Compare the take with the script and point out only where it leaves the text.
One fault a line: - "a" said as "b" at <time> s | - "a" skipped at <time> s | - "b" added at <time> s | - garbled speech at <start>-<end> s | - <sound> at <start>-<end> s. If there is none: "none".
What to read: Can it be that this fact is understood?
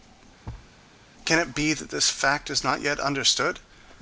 - thud at 0.5-0.7 s
- "not yet" added at 2.6 s